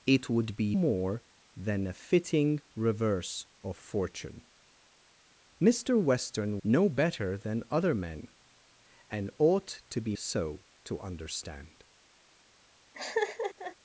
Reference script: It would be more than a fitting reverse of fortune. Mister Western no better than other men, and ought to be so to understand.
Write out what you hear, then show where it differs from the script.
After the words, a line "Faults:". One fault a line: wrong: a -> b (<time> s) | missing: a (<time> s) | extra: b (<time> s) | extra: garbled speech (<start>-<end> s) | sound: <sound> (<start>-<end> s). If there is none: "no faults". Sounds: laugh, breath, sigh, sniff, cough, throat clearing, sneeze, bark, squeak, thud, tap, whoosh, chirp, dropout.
It would be more than a fitting reverse of fortune. Mister Western no better than other men, and ought to be so to understand.
Faults:
sound: laugh (12.9-13.8 s)